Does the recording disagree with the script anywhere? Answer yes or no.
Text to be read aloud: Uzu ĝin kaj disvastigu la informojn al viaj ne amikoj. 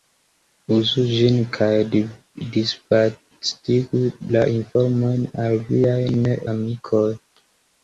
no